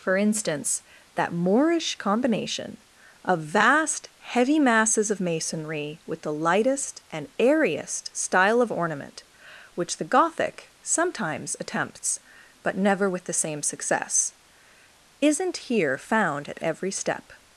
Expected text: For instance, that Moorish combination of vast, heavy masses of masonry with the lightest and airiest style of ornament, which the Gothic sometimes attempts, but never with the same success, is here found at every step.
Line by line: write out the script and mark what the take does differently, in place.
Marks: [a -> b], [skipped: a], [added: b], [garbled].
For instance, that Moorish combination of vast, heavy masses of masonry with the lightest and airiest style of ornament, which the Gothic sometimes attempts, but never with the same success, [is -> isn't] here found at every step.